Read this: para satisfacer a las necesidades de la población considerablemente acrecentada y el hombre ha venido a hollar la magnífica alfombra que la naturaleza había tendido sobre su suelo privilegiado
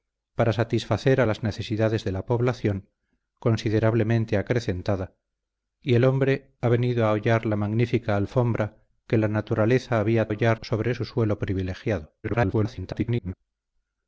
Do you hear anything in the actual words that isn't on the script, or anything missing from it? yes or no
yes